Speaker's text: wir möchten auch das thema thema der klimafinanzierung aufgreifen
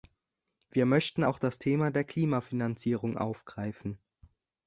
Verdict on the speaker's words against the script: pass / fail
fail